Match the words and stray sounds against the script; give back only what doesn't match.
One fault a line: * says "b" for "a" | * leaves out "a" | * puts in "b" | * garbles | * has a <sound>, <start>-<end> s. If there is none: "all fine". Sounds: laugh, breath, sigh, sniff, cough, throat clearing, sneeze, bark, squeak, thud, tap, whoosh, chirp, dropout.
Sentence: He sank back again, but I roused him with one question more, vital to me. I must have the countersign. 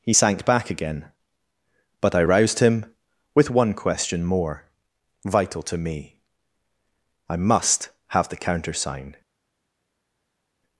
all fine